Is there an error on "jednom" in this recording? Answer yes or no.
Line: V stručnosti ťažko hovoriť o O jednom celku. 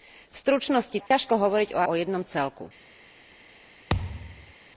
no